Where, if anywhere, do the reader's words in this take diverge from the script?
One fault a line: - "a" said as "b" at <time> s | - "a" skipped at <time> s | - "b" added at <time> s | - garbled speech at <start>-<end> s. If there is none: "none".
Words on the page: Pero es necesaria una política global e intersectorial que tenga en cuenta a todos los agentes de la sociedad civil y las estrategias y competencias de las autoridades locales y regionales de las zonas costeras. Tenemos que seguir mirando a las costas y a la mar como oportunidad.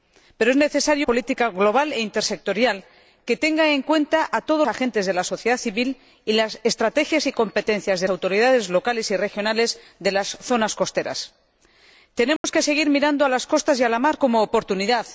- "una" skipped at 1.1 s
- "los" skipped at 4.7 s
- "las" skipped at 8.1 s